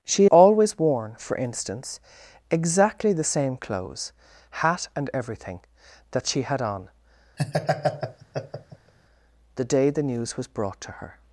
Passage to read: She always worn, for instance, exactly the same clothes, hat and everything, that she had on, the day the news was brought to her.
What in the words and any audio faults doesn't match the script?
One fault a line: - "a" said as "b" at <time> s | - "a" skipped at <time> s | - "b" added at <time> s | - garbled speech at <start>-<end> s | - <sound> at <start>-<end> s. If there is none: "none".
- laugh at 7.4-8.9 s